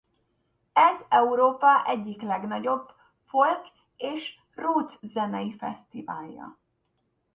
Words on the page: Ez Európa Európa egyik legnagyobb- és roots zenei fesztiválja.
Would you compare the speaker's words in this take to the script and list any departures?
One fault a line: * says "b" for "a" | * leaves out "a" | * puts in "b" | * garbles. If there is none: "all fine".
* leaves out "Európa"
* puts in "folk"